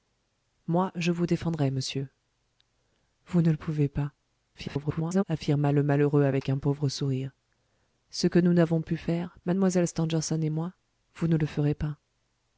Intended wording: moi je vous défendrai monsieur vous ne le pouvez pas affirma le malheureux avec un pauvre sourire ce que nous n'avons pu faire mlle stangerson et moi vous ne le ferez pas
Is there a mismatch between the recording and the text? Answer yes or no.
yes